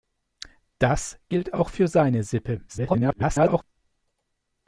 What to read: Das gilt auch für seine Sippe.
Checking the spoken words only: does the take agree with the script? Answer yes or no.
no